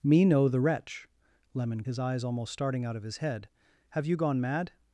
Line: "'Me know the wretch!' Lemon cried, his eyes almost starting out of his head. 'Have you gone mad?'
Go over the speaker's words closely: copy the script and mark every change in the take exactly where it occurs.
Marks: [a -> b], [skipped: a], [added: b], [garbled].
"'Me know the wretch!' Lemon [skipped: cried,] his eyes almost starting out of his head. 'Have you gone mad?'